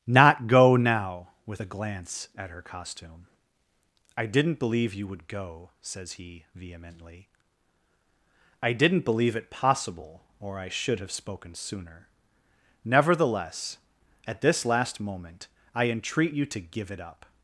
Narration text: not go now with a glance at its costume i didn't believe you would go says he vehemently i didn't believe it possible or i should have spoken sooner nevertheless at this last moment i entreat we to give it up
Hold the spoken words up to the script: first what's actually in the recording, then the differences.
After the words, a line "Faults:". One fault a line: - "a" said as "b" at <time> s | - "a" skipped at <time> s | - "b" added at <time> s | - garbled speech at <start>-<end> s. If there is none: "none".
not go now with a glance at her costume i didn't believe you would go says he vehemently i didn't believe it possible or i should have spoken sooner nevertheless at this last moment i entreat you to give it up
Faults:
- "its" said as "her" at 2.5 s
- "we" said as "you" at 16.3 s